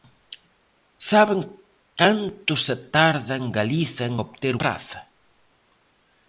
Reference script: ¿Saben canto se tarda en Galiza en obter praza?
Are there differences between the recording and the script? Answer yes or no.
no